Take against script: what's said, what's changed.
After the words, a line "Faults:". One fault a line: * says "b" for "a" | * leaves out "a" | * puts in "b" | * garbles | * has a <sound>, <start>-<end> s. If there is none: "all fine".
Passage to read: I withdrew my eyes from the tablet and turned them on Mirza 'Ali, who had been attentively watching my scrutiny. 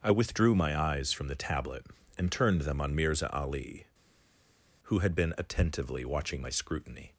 I withdrew my eyes from the tablet and turned them on Mirza 'Ali, who had been attentively watching my scrutiny.
Faults:
all fine